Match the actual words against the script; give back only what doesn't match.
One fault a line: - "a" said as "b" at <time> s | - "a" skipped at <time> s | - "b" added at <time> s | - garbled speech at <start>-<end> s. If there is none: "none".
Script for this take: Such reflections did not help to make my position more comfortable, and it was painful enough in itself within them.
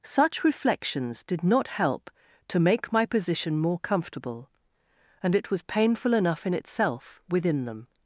none